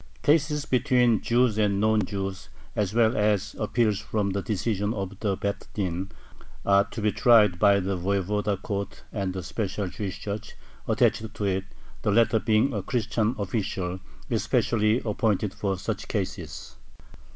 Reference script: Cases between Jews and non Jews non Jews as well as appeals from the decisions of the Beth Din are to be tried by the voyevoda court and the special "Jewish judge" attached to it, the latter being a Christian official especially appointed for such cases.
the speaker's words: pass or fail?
fail